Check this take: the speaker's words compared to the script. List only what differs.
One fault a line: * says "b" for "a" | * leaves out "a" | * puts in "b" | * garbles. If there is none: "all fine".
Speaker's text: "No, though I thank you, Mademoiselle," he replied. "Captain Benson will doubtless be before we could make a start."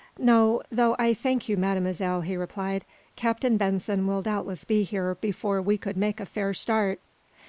* puts in "here"
* puts in "fair"